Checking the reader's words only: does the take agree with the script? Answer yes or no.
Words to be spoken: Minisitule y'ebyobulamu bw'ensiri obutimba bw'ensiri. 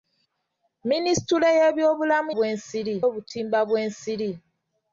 yes